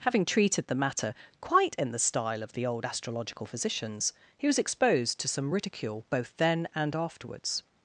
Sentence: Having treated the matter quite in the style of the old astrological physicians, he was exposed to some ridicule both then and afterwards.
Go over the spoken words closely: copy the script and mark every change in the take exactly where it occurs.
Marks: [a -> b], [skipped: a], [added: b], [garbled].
Having treated the matter quite in the style of the old astrological physicians, he was exposed to some ridicule both then and afterwards.